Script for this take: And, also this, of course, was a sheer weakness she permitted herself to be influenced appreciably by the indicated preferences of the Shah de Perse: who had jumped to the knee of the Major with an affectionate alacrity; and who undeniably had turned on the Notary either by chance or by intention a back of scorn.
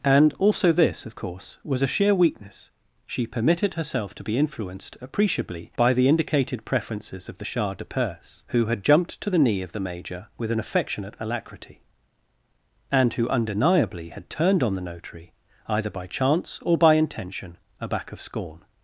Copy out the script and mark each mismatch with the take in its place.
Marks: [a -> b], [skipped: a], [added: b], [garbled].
And, also this, of course, was a sheer weakness she permitted herself to be influenced appreciably by the indicated preferences of the Shah de Perse: who had jumped to the knee of the Major with an affectionate alacrity; and who undeniably had turned on the Notary either by chance or by intention a back of scorn.